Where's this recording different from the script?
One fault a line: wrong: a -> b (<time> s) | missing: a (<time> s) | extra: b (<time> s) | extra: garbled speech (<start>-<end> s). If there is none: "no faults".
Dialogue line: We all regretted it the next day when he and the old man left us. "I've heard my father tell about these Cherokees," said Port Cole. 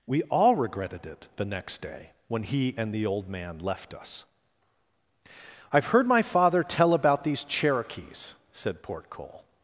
no faults